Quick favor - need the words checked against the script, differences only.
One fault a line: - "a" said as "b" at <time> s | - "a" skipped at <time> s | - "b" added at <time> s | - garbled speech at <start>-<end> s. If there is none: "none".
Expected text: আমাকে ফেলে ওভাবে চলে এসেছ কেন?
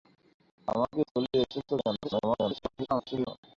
- "ফেলে ওভাবে" skipped at 1.0 s
- garbled speech at 2.0-3.3 s